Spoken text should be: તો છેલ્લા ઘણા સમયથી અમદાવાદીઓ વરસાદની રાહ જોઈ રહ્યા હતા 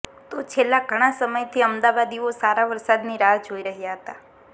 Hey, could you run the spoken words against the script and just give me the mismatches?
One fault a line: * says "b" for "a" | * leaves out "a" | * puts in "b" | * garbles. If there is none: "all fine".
* puts in "સારા"